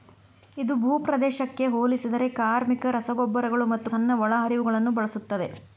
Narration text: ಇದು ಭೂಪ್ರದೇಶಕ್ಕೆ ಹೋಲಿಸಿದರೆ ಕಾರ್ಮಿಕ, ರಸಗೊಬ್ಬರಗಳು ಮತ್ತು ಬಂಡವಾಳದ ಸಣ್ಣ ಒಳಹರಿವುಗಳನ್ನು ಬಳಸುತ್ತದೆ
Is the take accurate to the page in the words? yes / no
no